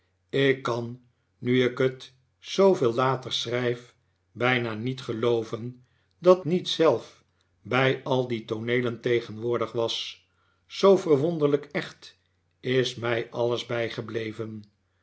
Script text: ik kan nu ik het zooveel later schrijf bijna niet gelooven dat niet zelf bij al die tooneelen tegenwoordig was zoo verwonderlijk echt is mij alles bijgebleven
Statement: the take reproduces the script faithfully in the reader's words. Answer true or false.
true